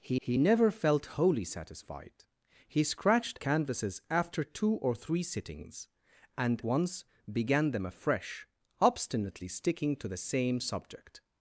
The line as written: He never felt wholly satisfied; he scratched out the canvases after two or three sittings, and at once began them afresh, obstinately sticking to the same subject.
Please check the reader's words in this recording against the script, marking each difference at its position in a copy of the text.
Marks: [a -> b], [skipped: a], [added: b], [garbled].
He [added: he] never felt wholly satisfied; he scratched [skipped: out the] canvases after two or three sittings, and [skipped: at] once began them afresh, obstinately sticking to the same subject.